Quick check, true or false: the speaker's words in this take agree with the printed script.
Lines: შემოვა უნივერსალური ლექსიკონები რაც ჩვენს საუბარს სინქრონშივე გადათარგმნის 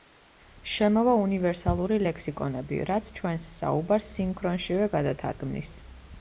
true